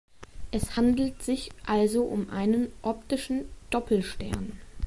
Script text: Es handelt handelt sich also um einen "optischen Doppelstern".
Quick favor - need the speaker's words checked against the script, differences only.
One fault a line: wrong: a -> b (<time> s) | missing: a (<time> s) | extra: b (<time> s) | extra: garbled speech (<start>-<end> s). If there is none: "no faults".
missing: handelt (1.2 s)